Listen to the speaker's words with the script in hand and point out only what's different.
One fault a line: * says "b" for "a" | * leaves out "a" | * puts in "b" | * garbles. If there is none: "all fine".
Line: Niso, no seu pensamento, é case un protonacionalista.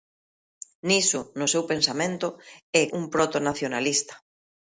* leaves out "case"